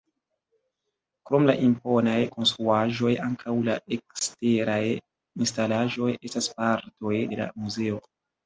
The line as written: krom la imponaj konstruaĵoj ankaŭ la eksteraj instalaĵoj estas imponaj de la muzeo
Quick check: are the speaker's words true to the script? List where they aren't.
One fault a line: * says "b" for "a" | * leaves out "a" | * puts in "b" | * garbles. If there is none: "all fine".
* says "partoj" for "imponaj"